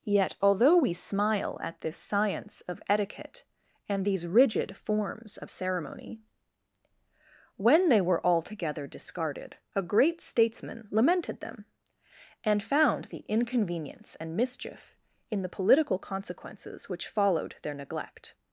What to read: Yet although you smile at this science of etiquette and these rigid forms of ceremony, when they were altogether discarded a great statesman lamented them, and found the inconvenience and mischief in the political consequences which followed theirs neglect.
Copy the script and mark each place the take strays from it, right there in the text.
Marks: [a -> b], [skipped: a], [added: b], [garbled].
Yet although [you -> we] smile at this science of etiquette and these rigid forms of ceremony, when they were altogether discarded a great statesman lamented them, and found the inconvenience and mischief in the political consequences which followed [theirs -> their] neglect.